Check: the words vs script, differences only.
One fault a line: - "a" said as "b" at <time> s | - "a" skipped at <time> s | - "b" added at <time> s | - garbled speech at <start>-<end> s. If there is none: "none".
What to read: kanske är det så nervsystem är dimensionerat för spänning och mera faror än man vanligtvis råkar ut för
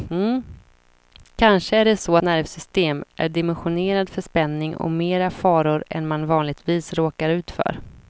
none